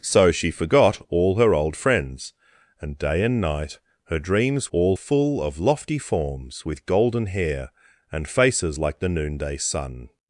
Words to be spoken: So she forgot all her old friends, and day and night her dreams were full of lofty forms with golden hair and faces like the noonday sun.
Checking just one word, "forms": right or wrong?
right